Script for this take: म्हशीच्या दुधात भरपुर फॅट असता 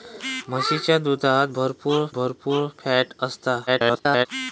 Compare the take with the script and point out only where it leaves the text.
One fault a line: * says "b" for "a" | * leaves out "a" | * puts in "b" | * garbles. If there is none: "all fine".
* puts in "भरपुर"
* garbles